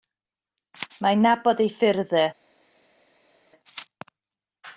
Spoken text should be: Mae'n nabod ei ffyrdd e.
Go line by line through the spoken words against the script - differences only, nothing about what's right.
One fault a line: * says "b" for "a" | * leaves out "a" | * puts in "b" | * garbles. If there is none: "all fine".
all fine